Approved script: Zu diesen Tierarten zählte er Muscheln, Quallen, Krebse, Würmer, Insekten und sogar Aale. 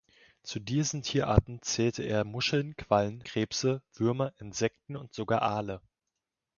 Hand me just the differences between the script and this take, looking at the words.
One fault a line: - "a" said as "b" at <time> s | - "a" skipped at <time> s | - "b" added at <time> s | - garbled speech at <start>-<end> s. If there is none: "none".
none